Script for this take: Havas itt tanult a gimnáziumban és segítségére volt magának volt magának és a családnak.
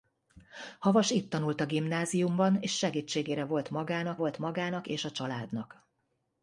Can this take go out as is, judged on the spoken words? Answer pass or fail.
pass